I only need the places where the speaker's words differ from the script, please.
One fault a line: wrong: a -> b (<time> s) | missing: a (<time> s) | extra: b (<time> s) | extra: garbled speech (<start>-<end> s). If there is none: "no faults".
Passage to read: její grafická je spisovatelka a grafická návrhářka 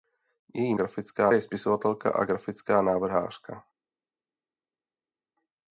no faults